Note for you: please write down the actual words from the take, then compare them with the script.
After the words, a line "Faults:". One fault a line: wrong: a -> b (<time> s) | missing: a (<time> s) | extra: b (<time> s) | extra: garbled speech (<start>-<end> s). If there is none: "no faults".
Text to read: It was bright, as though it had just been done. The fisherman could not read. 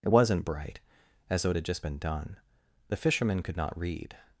It wasn't bright, as though it had just been done. The fisherman could not read.
Faults:
wrong: was -> wasn't (0.1 s)